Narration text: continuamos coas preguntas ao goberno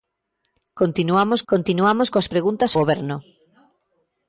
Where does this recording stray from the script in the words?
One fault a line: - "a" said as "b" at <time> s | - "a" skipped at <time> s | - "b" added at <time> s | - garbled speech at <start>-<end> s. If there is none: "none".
- "continuamos" added at 1.5 s
- "ao" skipped at 2.7 s